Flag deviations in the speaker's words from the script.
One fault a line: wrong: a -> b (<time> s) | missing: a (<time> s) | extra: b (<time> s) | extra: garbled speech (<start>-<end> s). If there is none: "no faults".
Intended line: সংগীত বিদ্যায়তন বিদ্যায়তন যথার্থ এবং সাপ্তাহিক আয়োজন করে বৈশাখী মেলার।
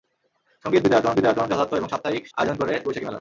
no faults